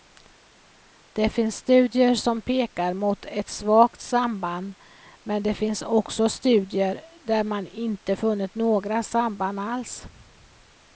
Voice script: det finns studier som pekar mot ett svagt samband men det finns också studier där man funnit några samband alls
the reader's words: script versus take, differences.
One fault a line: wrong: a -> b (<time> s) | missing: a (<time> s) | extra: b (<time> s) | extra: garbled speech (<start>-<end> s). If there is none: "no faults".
extra: inte (7.7 s)